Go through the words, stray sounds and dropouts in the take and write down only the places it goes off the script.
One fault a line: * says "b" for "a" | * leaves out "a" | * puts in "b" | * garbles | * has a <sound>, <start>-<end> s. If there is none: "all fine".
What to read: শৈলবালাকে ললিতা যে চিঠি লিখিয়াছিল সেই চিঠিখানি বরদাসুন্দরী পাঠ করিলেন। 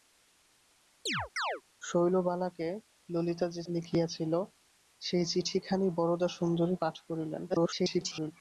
* has a chirp, 1.1-1.6 s
* leaves out "চিঠি"
* garbles